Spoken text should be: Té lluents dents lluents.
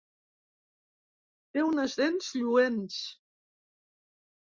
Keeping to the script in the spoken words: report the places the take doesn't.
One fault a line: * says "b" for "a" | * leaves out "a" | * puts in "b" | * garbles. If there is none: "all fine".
* says "unes" for "lluents"